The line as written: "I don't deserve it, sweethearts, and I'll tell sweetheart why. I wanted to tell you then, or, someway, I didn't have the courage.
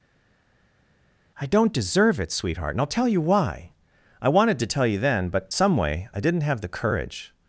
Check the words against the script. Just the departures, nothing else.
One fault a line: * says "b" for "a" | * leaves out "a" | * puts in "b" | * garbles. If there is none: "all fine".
* says "sweetheart" for "sweethearts"
* says "you" for "sweetheart"
* says "but" for "or"